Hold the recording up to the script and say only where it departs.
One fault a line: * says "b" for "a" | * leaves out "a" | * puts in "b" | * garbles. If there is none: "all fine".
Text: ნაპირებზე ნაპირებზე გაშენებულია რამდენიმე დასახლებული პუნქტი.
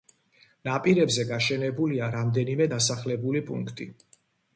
* leaves out "ნაპირებზე"